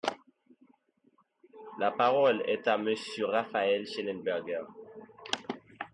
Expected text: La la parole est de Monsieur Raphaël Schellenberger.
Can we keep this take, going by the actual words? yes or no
no